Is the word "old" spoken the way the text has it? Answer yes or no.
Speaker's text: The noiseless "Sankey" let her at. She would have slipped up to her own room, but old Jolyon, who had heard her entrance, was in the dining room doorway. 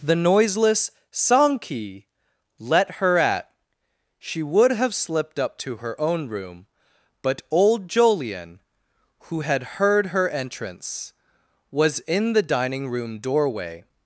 yes